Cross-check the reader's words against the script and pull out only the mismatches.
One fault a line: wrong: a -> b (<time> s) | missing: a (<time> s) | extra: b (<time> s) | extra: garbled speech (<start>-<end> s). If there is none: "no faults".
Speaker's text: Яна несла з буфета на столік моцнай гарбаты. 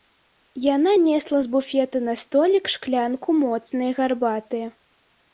extra: шклянку (2.7 s)